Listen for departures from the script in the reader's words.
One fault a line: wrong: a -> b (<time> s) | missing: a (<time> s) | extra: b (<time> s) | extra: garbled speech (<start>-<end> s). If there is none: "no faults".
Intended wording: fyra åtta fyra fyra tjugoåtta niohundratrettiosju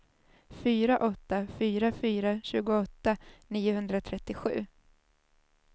no faults